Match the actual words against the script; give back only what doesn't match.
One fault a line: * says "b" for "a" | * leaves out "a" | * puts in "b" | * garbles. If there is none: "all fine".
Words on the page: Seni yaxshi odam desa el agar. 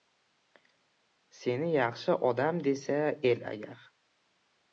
all fine